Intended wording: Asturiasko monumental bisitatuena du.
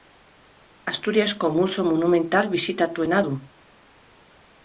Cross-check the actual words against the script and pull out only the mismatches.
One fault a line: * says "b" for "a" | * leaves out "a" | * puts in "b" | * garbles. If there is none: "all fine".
* puts in "multzo"